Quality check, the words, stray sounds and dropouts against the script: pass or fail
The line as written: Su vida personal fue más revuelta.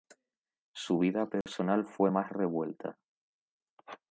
fail